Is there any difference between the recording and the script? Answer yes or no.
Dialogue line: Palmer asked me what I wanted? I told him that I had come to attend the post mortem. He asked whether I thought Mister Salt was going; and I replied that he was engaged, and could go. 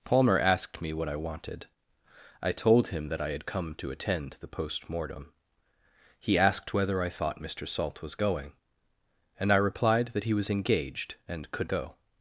no